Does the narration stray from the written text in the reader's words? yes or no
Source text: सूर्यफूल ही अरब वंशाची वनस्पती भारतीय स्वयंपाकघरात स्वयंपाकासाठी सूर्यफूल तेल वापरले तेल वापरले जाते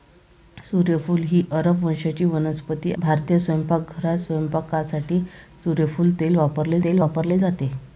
no